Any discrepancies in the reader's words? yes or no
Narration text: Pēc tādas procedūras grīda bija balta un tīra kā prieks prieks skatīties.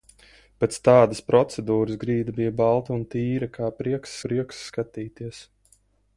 no